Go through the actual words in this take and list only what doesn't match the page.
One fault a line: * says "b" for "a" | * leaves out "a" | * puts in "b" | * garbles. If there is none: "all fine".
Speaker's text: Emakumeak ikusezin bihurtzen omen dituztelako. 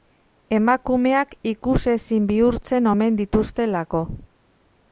all fine